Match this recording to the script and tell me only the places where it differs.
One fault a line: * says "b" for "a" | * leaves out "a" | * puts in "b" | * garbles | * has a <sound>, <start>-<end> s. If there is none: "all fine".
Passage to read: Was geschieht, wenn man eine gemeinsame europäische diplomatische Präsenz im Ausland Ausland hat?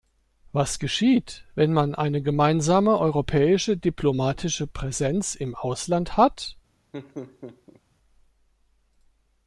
* leaves out "Ausland"
* has a laugh, 6.9-7.8 s